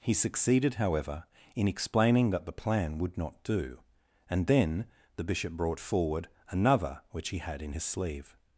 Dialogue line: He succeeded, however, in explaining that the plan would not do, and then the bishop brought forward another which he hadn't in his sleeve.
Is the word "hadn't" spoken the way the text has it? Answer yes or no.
no